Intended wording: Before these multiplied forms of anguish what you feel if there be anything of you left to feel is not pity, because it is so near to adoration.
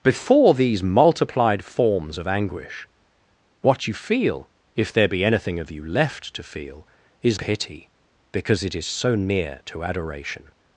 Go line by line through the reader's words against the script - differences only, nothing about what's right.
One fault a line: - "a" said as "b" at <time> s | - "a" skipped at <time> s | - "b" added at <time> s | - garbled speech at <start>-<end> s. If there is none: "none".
- "not" skipped at 7.4 s